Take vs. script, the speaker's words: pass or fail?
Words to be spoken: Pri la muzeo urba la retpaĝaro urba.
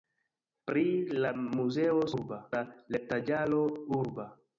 pass